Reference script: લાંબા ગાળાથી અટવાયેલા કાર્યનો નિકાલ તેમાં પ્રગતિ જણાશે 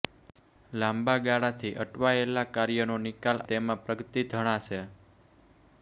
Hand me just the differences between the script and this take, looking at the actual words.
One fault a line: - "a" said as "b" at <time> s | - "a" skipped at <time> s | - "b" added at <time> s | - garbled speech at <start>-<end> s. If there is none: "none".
none